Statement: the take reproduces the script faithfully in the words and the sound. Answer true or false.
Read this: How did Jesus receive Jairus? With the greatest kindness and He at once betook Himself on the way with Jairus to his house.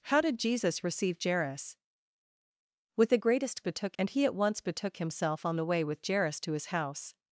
false